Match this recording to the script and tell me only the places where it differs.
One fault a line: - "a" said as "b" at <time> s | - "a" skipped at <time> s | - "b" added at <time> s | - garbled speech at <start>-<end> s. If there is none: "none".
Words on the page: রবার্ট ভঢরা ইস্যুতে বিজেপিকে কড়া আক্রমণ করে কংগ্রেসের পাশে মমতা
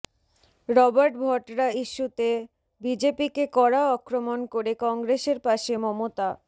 none